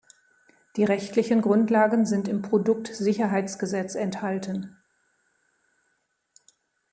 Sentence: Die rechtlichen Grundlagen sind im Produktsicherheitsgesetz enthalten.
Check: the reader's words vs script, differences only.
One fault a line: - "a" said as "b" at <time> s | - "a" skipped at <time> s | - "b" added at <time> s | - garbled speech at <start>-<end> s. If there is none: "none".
none